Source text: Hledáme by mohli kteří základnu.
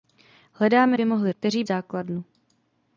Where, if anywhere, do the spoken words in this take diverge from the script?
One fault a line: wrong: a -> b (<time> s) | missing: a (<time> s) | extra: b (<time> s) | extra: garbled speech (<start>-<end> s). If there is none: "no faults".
no faults